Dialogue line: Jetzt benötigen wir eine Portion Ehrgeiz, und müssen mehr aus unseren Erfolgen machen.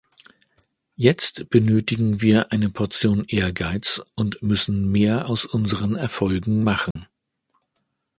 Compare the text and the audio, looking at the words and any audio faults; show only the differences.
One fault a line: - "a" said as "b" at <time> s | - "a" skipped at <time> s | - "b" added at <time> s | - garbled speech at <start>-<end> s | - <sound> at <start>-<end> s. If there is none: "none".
- dropout at 6.9-7.0 s